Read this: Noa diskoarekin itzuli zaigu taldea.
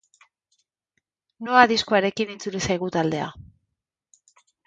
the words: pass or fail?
pass